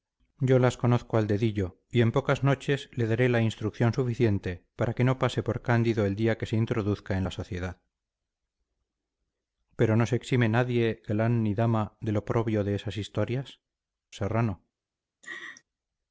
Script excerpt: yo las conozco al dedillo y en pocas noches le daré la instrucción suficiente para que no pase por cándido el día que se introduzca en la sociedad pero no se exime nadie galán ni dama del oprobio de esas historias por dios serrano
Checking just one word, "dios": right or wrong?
wrong